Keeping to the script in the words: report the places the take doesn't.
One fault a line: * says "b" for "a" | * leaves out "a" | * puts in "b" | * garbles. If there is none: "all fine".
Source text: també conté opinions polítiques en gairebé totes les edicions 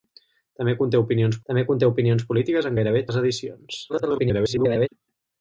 * puts in "també conté opinions"
* leaves out "totes"
* garbles